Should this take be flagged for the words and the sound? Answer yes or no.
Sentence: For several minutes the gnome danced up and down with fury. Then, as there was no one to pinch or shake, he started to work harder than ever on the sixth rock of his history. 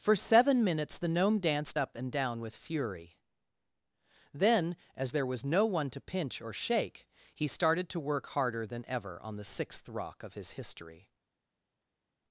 yes